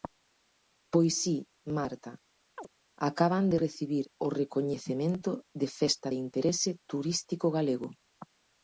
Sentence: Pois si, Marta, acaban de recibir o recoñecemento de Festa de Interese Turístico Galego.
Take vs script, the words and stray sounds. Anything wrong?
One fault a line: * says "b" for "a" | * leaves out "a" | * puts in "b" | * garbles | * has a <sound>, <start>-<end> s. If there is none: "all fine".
* has a chirp, 2.6-2.7 s